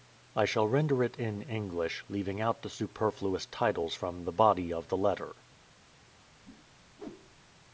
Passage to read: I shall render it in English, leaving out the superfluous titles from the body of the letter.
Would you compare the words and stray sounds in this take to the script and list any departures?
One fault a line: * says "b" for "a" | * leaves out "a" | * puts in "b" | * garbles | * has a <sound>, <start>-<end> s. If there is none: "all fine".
* has a whoosh, 6.4-7.5 s